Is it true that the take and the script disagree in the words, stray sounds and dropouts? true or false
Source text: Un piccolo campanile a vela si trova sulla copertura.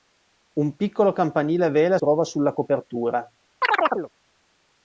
true